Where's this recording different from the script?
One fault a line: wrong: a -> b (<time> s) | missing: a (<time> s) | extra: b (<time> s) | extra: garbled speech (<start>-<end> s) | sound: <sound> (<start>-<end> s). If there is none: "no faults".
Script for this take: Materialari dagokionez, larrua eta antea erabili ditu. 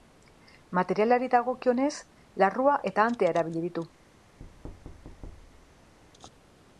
sound: thud (4.4-5.9 s)